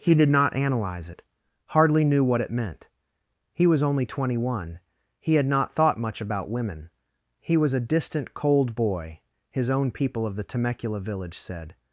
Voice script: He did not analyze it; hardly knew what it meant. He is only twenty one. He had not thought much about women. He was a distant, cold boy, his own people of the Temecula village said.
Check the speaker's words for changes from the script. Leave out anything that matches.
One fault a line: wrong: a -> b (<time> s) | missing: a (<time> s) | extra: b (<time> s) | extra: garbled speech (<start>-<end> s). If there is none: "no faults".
wrong: is -> was (3.7 s)